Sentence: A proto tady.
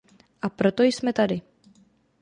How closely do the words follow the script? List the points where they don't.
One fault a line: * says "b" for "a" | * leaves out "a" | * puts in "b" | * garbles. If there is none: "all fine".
* puts in "jsme"